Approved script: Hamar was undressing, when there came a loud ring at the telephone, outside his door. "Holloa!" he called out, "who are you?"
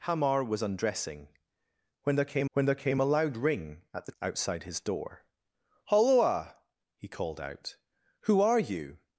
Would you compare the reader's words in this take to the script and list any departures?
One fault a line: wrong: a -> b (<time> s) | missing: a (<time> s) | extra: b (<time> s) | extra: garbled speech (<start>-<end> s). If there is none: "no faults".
extra: when there came (2.5 s)
missing: telephone (4.1 s)